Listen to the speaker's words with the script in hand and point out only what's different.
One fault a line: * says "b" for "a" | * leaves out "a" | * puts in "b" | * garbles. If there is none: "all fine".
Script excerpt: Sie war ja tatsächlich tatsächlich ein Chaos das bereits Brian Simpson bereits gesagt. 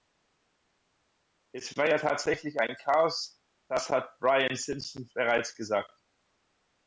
* says "Es" for "Sie"
* leaves out "tatsächlich"
* says "hat" for "bereits"